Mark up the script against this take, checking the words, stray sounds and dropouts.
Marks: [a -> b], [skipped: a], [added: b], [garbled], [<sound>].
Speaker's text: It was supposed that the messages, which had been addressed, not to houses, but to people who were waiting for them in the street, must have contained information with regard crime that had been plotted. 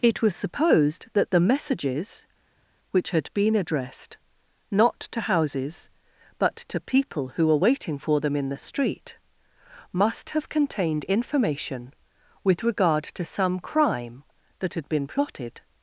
It was supposed that the messages, which had been addressed, not to houses, but to people who were waiting for them in the street, must have contained information with regard [added: to some] crime that had been plotted.